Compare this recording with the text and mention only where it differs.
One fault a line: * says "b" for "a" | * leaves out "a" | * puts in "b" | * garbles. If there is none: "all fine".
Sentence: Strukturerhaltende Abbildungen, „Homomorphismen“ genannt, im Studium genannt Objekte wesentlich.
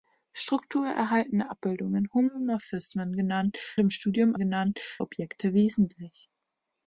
all fine